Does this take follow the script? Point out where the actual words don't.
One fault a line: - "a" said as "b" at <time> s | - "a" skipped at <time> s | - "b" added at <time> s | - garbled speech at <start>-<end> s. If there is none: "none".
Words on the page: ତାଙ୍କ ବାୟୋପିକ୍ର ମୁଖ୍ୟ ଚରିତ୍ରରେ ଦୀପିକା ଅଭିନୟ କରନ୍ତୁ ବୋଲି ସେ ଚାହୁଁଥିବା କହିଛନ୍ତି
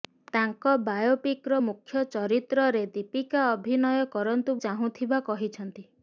- "ବୋଲି ସେ" skipped at 4.6 s